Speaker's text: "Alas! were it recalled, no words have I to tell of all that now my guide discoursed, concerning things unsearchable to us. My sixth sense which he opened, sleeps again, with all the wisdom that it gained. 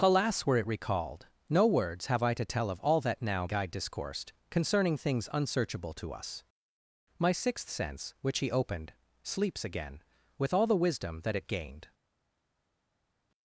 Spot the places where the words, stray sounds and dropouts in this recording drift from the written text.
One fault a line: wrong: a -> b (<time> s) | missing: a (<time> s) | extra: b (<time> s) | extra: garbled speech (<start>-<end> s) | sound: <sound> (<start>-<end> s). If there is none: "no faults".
missing: my (3.5 s)